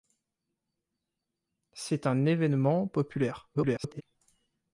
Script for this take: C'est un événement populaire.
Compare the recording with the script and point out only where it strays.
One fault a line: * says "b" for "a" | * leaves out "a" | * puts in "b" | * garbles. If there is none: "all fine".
* garbles